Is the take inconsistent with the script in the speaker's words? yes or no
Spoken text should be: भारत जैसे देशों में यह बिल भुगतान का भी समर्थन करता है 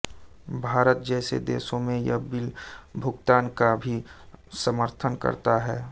no